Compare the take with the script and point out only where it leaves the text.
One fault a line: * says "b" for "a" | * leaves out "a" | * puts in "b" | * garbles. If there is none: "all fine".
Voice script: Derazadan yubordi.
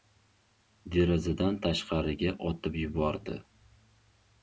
* puts in "tashqariga otib"